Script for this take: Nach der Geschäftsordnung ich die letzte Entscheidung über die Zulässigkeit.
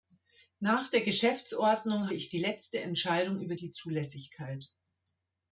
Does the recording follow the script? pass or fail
pass